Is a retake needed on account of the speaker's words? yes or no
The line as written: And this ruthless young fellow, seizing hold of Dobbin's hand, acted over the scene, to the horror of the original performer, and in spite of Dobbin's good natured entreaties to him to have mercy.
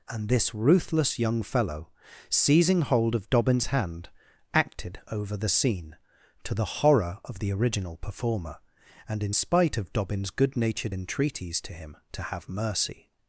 no